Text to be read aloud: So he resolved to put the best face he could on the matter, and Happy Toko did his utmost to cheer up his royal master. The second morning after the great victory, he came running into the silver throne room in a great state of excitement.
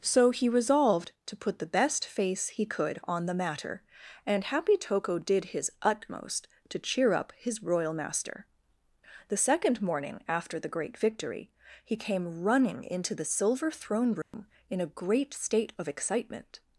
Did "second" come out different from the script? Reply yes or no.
no